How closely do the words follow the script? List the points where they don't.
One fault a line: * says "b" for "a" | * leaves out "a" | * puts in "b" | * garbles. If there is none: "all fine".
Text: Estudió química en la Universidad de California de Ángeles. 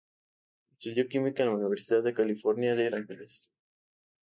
all fine